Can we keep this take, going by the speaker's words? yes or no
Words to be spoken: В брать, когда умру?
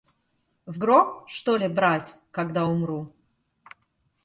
no